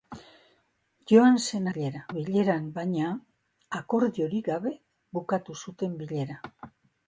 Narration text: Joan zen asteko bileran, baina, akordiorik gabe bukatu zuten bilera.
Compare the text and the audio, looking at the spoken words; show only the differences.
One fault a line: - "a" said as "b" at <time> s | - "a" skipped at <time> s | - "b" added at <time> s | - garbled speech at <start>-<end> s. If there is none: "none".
- "asteko" said as "bilera" at 1.7 s